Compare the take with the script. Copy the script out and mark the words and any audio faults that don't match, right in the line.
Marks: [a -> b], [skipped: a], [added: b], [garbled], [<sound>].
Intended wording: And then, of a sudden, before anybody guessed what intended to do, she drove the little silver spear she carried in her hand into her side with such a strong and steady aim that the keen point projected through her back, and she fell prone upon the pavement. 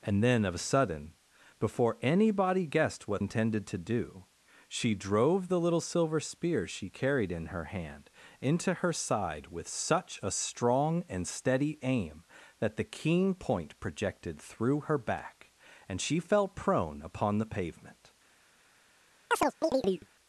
And then, of a sudden, before anybody guessed what intended to do, she drove the little silver spear she carried in her hand into her side with such a strong and steady aim that the keen point projected through her back, and she fell prone upon the pavement. [chirp]